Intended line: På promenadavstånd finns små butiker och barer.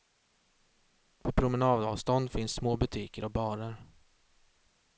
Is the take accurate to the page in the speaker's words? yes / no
yes